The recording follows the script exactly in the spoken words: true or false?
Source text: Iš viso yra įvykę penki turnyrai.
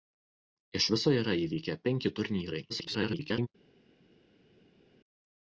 false